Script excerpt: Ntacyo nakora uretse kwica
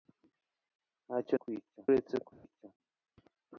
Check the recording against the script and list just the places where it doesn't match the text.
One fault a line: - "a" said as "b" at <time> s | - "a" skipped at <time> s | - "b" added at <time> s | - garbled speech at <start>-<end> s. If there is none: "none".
- "nakora" said as "kwica" at 1.4 s